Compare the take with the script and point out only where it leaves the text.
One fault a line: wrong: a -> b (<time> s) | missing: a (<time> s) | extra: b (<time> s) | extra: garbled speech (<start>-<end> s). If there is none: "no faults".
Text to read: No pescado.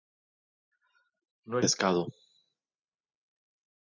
no faults